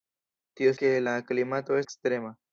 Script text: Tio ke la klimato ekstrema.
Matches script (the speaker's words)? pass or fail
pass